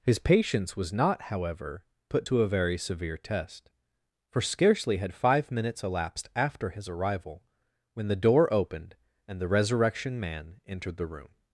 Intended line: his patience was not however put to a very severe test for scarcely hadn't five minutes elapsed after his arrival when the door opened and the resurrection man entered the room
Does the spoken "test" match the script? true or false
true